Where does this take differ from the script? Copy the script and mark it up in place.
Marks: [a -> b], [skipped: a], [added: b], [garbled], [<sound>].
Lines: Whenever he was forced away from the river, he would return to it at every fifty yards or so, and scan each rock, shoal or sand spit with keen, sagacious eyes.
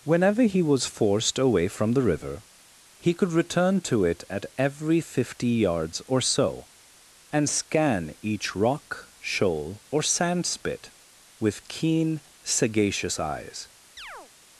Whenever he was forced away from the river, he [would -> could] return to it at every fifty yards or so, and scan each rock, shoal or sand spit with keen, sagacious eyes. [chirp]